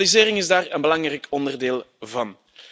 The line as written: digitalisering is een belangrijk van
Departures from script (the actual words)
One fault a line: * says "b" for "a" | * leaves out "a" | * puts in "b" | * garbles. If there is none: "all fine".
* puts in "daar"
* puts in "onderdeel"